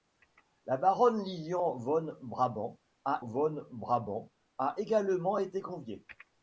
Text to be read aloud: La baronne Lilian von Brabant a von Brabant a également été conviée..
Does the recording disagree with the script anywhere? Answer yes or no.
no